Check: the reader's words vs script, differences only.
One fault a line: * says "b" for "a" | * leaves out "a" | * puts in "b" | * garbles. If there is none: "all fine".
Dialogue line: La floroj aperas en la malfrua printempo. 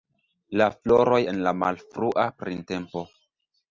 * leaves out "aperas"